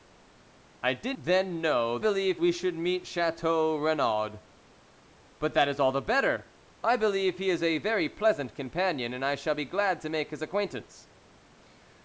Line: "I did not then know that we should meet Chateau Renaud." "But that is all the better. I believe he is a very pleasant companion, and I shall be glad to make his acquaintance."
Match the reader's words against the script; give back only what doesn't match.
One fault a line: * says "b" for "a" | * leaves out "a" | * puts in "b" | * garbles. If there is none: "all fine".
* leaves out "not"
* says "believe" for "that"